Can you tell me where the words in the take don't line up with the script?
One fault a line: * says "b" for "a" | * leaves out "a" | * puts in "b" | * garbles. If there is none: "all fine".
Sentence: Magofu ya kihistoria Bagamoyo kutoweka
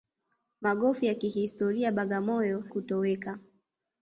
all fine